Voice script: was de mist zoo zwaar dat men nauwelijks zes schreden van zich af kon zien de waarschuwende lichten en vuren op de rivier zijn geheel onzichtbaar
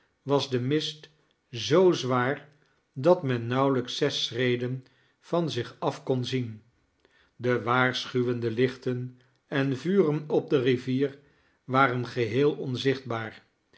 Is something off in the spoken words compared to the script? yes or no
yes